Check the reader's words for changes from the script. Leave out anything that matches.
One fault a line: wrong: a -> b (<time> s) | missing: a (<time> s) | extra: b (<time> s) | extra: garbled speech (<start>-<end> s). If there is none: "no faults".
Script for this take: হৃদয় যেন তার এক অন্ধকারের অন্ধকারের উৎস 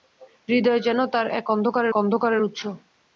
no faults